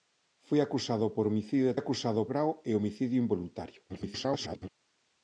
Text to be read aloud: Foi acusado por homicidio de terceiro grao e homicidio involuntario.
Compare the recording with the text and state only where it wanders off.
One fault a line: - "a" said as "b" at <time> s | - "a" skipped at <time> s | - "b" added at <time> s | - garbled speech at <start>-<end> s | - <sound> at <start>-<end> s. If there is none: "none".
- "terceiro" said as "acusado" at 1.8 s
- garbled speech at 3.9-4.7 s